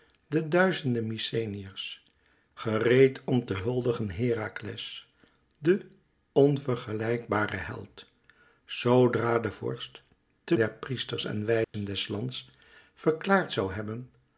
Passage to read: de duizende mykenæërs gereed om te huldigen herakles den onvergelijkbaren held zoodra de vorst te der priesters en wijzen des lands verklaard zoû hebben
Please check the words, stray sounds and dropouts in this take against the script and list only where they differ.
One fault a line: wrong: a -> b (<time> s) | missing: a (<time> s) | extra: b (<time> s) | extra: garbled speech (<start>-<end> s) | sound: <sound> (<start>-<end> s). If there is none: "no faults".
sound: dropout (11.6-11.7 s)